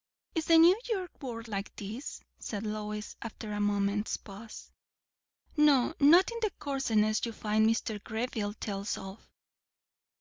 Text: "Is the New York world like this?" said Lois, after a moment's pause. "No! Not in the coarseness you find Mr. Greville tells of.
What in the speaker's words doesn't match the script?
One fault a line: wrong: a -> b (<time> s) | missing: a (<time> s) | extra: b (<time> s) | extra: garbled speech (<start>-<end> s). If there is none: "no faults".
no faults